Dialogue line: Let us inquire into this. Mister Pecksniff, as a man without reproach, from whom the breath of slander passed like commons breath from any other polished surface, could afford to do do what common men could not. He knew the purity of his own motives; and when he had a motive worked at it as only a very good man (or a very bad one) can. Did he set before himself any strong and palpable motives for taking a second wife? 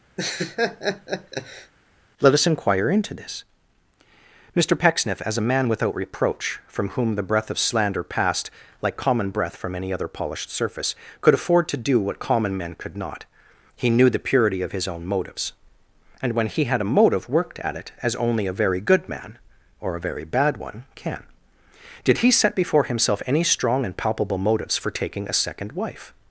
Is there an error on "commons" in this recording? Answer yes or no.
yes